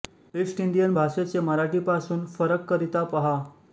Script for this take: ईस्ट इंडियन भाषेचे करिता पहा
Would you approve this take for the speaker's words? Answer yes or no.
no